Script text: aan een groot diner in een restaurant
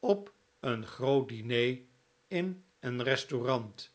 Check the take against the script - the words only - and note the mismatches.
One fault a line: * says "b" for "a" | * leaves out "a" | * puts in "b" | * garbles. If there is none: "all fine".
* says "op" for "aan"